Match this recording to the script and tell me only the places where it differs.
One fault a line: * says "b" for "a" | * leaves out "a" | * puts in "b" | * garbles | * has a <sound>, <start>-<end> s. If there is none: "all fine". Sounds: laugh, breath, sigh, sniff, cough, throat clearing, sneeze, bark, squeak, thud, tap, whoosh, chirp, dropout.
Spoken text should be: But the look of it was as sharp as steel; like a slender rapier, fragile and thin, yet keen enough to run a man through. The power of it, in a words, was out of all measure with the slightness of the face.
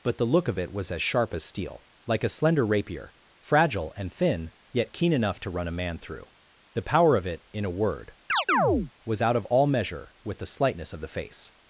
* says "word" for "words"
* has a chirp, 8.3-8.9 s